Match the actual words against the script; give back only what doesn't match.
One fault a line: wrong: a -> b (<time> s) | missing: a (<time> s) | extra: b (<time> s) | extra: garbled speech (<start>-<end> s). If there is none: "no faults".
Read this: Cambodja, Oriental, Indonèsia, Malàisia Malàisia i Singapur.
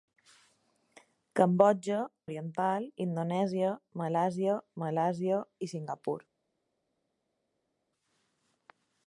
no faults